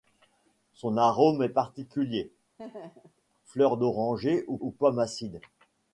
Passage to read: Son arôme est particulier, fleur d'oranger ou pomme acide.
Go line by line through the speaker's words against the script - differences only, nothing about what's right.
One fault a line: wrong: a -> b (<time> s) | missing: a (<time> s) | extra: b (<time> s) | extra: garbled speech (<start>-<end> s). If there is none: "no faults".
extra: ou (4.6 s)